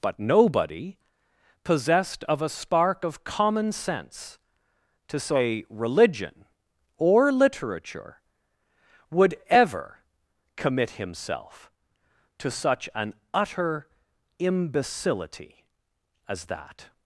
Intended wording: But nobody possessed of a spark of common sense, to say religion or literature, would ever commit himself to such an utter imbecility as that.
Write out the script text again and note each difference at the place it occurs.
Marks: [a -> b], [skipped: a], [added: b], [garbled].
But nobody possessed of a spark of common sense, to say religion or literature, would ever commit himself to such an utter imbecility as that.